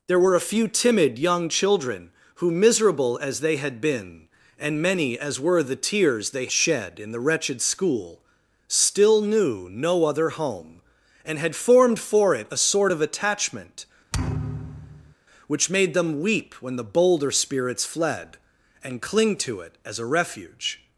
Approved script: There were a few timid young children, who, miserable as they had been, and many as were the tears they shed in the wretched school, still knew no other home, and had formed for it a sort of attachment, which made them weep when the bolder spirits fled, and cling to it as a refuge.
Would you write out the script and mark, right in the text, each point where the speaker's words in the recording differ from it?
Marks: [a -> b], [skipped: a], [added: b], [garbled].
There were a few timid young children, who, miserable as they had been, and many as were the tears they shed in the wretched school, still knew no other home, and had formed for it a sort of attachment, which made them weep when the bolder spirits fled, and cling to it as a refuge.